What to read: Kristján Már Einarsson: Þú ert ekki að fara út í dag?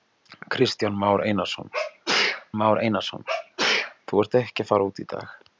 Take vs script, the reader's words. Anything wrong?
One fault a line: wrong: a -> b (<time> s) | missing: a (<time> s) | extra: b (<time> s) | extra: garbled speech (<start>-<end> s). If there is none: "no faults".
extra: Már Einarsson (2.6 s)